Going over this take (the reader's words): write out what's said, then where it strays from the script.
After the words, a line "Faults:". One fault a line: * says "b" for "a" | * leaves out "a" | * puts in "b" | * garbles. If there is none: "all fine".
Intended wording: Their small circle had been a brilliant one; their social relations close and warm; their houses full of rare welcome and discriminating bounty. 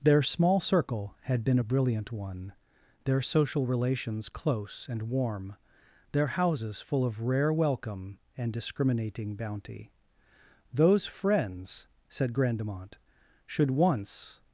Their small circle had been a brilliant one; their social relations close and warm; their houses full of rare welcome and discriminating bounty. Those friends, said Grandemont, should once
Faults:
* puts in "Those friends said Grandemont should once"